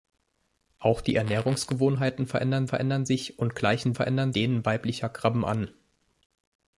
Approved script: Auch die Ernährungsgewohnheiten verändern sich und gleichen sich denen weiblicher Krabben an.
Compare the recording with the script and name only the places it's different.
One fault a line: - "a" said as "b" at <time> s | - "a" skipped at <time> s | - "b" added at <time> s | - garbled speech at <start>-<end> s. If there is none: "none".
- "verändern" added at 2.6 s
- "sich" said as "verändern" at 3.9 s